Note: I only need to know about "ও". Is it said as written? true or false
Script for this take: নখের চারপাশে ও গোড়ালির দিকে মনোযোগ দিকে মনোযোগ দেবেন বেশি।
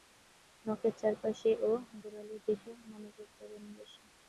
true